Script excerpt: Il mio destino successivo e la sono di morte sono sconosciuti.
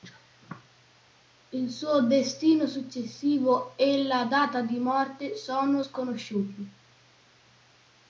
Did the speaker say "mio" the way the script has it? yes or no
no